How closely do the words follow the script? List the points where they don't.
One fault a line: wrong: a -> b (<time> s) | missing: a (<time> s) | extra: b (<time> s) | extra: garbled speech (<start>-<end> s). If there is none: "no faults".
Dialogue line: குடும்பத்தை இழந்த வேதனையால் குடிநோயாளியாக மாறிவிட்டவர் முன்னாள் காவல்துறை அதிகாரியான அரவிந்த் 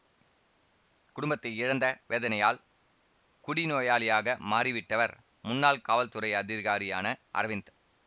no faults